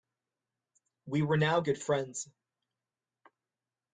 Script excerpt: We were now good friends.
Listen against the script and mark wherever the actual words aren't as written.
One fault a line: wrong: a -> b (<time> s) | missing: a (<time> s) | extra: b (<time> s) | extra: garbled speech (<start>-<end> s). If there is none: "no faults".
no faults